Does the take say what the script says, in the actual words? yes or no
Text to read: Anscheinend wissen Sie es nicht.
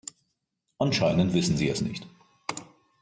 yes